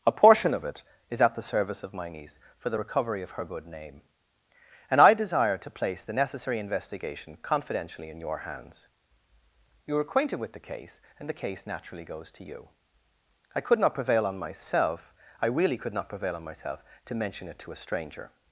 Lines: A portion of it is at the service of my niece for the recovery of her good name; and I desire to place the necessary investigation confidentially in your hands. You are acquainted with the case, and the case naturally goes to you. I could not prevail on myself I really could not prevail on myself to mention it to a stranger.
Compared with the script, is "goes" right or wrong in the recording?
right